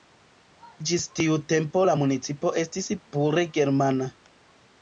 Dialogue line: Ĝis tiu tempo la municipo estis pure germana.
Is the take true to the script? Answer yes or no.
yes